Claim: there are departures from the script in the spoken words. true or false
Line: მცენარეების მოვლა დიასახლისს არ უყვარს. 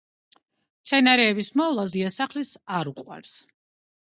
false